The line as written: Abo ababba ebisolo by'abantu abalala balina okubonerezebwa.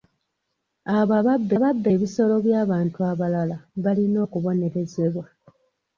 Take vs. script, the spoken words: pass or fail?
fail